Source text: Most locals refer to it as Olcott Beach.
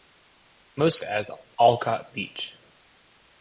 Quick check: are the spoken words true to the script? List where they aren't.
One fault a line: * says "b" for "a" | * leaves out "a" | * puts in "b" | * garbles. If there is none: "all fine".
* leaves out "locals refer to"